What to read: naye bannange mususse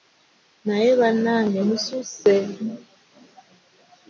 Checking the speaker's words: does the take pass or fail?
pass